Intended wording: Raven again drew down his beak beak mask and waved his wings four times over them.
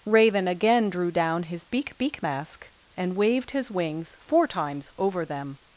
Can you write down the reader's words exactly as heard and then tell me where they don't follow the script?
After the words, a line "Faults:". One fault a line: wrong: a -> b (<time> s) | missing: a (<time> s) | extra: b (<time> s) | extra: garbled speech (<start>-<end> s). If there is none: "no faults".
Raven again drew down his beak beak mask and waved his wings four times over them.
Faults:
no faults